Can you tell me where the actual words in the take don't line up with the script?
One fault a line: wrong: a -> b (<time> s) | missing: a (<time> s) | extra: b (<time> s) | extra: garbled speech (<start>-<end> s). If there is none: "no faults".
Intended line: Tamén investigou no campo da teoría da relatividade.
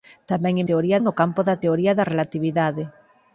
wrong: investigou -> teoría (0.7 s)